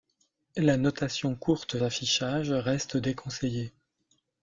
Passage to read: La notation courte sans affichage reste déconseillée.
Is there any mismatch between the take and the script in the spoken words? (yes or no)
yes